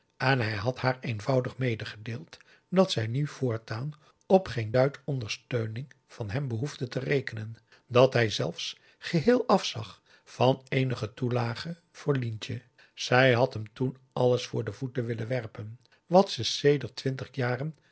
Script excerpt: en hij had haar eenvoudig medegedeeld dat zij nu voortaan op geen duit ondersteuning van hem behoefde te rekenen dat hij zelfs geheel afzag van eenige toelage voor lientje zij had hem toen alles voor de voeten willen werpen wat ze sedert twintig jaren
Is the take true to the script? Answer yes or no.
yes